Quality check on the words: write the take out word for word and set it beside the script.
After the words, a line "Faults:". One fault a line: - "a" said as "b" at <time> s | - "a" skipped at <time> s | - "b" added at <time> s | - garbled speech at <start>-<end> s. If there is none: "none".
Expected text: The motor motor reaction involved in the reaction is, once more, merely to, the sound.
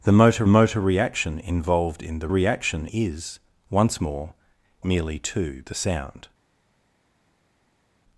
The motor motor reaction involved in the reaction is, once more, merely to, the sound.
Faults:
none